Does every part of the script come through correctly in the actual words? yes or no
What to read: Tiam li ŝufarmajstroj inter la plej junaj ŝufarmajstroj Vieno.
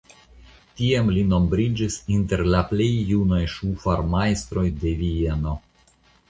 no